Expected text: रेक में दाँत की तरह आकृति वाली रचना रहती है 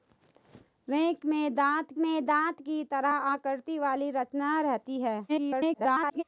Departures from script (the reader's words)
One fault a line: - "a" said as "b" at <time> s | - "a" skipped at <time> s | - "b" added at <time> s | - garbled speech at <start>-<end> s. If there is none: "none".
- "में दाँत" added at 2.0 s
- garbled speech at 5.3-6.2 s